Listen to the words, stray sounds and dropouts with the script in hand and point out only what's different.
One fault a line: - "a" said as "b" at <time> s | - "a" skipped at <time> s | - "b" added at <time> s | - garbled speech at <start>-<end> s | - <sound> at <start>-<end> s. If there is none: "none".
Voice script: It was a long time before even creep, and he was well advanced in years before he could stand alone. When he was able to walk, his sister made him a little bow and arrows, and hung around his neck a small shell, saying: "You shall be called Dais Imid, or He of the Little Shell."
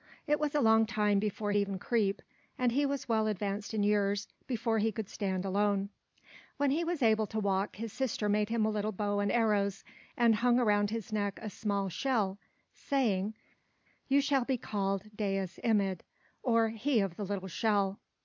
none